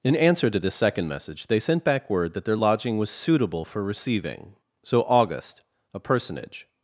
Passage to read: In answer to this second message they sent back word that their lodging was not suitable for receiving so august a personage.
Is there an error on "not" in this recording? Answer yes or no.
yes